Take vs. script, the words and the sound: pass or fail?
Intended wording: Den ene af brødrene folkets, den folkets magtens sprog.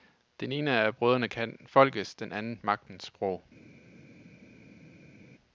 fail